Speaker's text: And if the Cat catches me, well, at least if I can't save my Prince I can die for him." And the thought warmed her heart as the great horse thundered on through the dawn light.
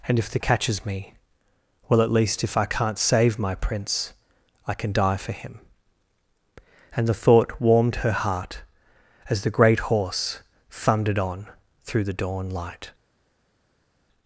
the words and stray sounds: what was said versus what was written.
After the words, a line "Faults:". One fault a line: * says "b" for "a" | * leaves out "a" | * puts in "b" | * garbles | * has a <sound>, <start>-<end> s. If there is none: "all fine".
And if the Catches me, well, at least if I can't save my Prince I can die for him." And the thought warmed her heart as the great horse thundered on through the dawn light.
Faults:
* leaves out "Cat"